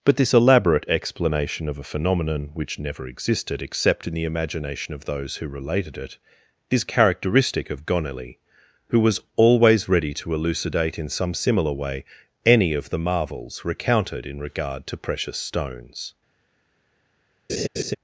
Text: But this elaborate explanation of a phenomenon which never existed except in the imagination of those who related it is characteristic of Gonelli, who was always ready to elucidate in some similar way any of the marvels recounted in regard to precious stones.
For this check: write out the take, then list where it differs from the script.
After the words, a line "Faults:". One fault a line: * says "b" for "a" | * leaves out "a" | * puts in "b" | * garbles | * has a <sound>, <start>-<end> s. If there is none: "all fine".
But this elaborate explanation of a phenomenon which never existed except in the imagination of those who related it is characteristic of Gonelli, who was always ready to elucidate in some similar way any of the marvels recounted in regard to precious stones.
Faults:
* has a laugh, 17.5-17.9 s